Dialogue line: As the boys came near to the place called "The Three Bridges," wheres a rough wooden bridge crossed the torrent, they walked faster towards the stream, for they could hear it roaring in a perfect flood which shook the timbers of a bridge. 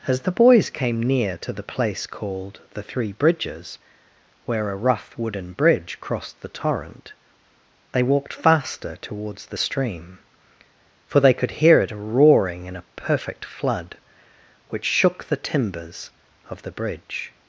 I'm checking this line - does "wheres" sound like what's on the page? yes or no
no